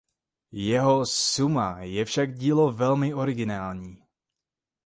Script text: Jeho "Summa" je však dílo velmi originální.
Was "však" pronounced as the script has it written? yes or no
yes